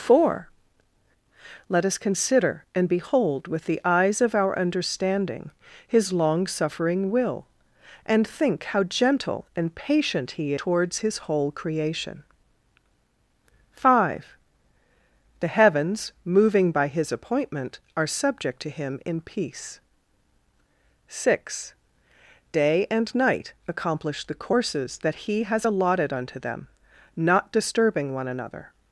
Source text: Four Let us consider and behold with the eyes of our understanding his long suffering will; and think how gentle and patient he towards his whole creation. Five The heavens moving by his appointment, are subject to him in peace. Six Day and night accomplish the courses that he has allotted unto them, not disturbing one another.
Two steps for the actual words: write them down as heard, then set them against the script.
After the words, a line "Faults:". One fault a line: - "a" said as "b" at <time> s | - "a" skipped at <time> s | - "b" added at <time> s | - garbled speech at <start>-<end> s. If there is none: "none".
Four Let us consider and behold with the eyes of our understanding his long suffering will; and think how gentle and patient he towards his whole creation. Five The heavens moving by his appointment, are subject to him in peace. Six Day and night accomplish the courses that he has allotted unto them, not disturbing one another.
Faults:
none